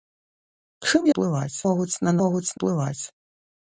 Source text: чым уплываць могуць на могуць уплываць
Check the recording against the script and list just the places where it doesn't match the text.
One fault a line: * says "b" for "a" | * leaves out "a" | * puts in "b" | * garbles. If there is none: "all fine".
all fine